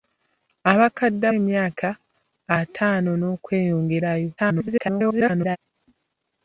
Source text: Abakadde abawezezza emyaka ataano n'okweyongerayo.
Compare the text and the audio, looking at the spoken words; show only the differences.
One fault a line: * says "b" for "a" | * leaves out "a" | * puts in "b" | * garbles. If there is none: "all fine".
* leaves out "abawezezza"
* garbles